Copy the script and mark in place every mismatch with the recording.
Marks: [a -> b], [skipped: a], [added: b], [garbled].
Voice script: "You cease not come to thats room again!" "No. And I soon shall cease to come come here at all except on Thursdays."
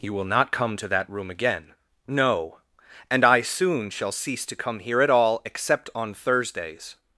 "You [cease -> will] not come to [thats -> that] room again!" "No. And I soon shall cease to come [skipped: come] here at all except on Thursdays."